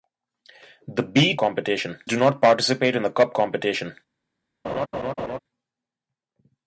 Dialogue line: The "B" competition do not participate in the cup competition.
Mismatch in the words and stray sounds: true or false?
true